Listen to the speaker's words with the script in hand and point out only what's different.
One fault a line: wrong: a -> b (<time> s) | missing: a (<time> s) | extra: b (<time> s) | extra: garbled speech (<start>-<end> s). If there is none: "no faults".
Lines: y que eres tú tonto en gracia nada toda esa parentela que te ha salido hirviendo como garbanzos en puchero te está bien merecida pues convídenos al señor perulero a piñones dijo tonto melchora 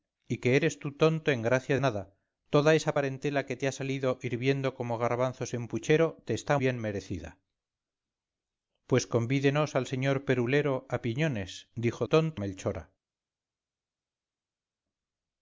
no faults